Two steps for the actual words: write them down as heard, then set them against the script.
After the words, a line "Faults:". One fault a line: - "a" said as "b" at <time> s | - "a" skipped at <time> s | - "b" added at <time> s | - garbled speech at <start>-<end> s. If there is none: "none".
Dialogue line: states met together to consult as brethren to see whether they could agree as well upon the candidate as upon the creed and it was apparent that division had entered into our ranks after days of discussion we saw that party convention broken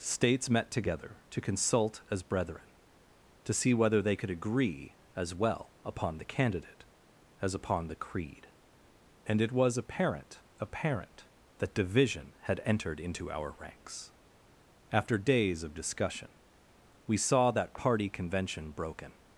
states met together to consult as brethren to see whether they could agree as well upon the candidate as upon the creed and it was apparent apparent that division had entered into our ranks after days of discussion we saw that party convention broken
Faults:
- "apparent" added at 10.6 s